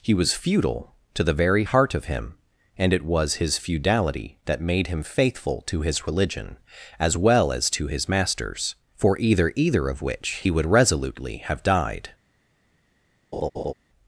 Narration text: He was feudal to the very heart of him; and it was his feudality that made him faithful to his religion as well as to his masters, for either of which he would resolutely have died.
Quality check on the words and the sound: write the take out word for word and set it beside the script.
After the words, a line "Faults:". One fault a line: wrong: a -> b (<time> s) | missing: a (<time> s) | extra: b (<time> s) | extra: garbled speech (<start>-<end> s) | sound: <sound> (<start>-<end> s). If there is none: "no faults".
He was feudal to the very heart of him; and it was his feudality that made him faithful to his religion as well as to his masters, for either either of which he would resolutely have died.
Faults:
extra: either (9.6 s)
sound: laugh (13.3-13.7 s)